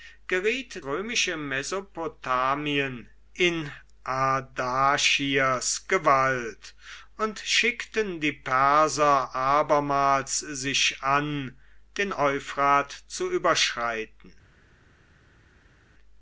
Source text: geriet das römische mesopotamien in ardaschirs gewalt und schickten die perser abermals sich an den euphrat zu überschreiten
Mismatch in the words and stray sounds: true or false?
true